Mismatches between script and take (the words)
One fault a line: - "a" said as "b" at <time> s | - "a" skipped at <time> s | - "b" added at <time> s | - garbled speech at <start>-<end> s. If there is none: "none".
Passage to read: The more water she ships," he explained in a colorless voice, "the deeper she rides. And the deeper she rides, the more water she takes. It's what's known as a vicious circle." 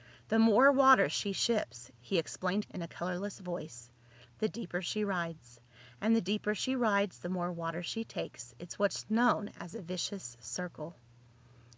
none